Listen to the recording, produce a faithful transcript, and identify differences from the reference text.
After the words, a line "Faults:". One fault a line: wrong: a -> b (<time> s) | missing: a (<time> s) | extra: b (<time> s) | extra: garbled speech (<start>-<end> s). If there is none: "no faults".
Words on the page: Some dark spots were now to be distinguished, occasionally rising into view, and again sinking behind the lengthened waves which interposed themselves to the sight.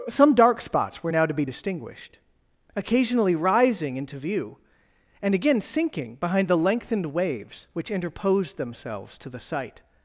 Some dark spots were now to be distinguished, occasionally rising into view, and again sinking behind the lengthened waves which interposed themselves to the sight.
Faults:
no faults